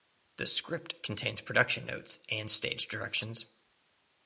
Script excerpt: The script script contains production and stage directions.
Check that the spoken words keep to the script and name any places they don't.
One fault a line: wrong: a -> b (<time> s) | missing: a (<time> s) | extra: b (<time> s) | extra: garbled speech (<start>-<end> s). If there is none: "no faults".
missing: script (1.0 s)
extra: notes (1.9 s)